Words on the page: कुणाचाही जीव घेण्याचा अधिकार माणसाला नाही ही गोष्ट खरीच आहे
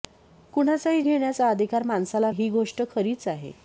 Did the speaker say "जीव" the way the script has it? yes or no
no